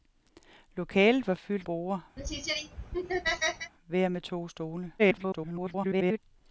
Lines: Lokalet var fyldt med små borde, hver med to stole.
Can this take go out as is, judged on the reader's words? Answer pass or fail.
fail